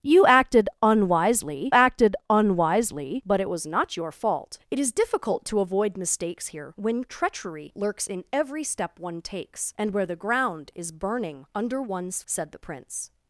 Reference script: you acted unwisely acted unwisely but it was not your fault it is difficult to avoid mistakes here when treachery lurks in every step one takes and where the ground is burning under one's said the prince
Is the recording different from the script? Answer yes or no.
no